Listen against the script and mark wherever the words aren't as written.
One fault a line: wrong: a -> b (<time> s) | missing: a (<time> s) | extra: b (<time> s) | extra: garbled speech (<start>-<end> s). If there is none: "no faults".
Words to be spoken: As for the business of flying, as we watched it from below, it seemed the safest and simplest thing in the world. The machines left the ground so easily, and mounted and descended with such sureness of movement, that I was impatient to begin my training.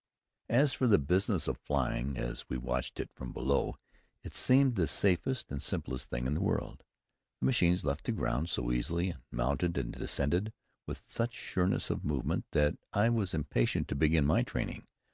no faults